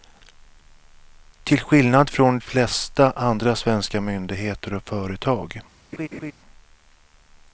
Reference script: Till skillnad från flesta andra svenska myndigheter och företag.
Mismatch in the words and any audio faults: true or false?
true